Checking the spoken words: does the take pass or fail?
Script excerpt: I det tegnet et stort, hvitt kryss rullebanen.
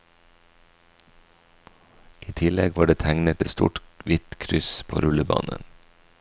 fail